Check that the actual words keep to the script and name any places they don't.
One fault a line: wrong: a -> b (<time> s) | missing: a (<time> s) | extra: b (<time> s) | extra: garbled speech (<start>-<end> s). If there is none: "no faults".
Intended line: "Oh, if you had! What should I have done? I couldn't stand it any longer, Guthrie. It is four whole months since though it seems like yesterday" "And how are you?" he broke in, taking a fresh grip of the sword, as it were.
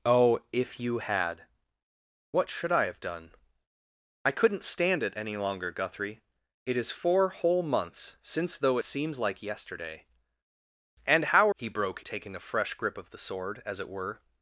missing: it (8.8 s)
missing: are you (11.5 s)
missing: in (12.0 s)